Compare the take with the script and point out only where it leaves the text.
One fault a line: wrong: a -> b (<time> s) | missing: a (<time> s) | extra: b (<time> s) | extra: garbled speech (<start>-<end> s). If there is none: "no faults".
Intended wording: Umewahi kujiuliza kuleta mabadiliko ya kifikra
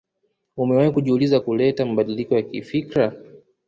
no faults